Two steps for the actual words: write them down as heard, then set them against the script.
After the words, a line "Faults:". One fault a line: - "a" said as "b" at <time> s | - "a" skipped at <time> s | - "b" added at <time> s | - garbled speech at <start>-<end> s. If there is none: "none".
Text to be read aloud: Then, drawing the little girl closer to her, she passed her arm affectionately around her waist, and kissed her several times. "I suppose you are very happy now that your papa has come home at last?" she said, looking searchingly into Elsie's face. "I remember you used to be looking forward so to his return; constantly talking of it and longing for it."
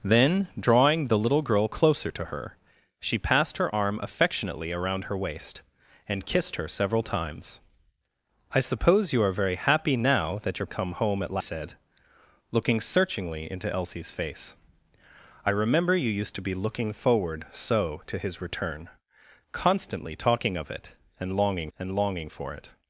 Then, drawing the little girl closer to her, she passed her arm affectionately around her waist, and kissed her several times. "I suppose you are very happy now that your come home at said, looking searchingly into Elsie's face. "I remember you used to be looking forward so to his return; constantly talking of it and longing and longing for it."
Faults:
- "papa has" skipped at 10.7 s
- "last she" skipped at 11.4 s
- "and longing" added at 21.8 s